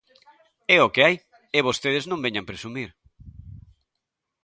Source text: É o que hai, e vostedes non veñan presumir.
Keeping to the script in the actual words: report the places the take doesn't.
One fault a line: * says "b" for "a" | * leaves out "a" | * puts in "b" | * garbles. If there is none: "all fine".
all fine